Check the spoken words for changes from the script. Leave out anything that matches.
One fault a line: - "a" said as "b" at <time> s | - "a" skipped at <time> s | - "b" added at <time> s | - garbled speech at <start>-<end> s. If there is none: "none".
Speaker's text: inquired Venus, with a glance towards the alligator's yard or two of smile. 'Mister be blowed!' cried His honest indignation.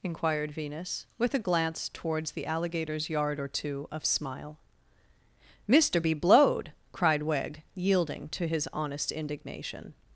- "Wegg yielding to" added at 7.2 s